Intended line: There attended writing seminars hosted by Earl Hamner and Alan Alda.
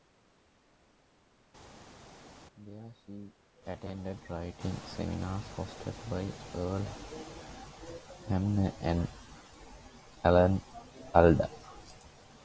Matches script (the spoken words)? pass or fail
fail